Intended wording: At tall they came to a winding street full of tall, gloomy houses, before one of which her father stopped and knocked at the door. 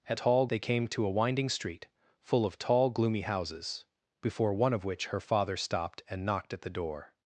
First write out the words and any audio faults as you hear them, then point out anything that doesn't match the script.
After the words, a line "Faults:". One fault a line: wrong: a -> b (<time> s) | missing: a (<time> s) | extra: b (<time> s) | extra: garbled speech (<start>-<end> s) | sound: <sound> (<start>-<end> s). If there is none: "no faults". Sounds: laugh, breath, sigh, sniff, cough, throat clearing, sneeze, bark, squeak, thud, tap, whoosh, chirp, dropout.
At tall they came to a winding street full of tall, gloomy houses, before one of which her father stopped and knocked at the door.
Faults:
no faults